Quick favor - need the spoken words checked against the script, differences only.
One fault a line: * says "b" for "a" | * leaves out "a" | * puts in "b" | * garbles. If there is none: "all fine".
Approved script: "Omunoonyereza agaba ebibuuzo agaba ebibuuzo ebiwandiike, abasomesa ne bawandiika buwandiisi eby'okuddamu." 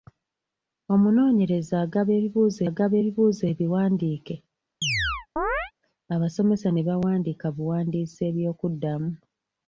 all fine